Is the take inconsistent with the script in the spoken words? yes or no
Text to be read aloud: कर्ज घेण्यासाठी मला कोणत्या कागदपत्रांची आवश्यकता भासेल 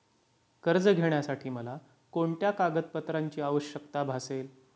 no